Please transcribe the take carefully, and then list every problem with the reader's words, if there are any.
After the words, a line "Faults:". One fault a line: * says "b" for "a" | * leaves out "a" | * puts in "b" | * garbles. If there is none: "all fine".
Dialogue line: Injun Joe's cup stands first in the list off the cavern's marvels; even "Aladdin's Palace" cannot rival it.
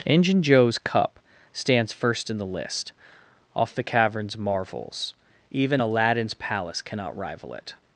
Injun Joe's cup stands first in the list off the cavern's marvels; even "Aladdin's Palace" cannot rival it.
Faults:
all fine